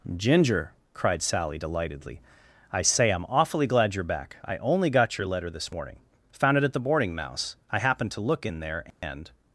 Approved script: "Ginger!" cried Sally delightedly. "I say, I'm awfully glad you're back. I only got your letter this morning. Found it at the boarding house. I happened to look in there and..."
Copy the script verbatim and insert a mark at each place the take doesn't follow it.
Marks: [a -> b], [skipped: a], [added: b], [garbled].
"Ginger!" cried Sally delightedly. "I say, I'm awfully glad you're back. I only got your letter this morning. Found it at the boarding [house. -> mouse] I happened to look in there and..."